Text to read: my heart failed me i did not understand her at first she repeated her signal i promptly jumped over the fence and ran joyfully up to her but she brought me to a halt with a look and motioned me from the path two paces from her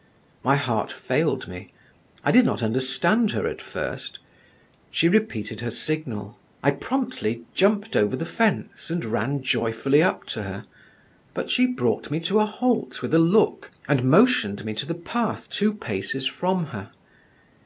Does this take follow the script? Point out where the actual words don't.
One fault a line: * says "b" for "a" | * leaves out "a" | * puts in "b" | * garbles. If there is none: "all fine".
* says "to" for "from"